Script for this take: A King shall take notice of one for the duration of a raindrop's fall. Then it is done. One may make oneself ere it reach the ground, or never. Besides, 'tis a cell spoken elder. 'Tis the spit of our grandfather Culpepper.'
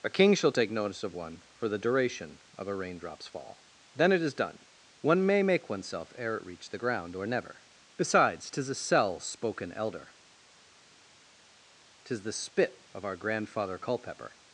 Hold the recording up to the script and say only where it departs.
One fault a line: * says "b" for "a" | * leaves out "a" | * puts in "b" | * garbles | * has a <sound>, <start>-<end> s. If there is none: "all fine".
all fine